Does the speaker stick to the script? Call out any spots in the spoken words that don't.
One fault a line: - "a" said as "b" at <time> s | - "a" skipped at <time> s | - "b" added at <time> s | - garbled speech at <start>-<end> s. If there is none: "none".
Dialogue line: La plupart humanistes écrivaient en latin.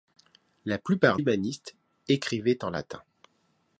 none